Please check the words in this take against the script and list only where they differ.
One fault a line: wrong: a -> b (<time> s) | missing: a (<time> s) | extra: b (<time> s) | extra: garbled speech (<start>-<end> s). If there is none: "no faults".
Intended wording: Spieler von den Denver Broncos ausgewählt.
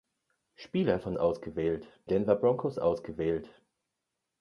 wrong: den -> ausgewählt (1.2 s)